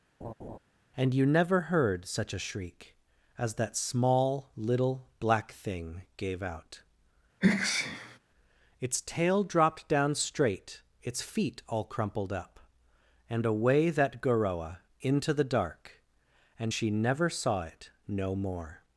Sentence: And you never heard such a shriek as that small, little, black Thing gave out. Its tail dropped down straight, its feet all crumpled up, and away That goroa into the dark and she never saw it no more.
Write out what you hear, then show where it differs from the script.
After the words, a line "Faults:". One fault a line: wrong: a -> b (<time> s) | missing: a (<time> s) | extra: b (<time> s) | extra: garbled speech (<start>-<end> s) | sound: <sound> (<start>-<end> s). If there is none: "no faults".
And you never heard such a shriek as that small, little, black Thing gave out. Its tail dropped down straight, its feet all crumpled up, and away That goroa into the dark and she never saw it no more.
Faults:
sound: laugh (0.2-0.6 s)
sound: sneeze (7.4-8.2 s)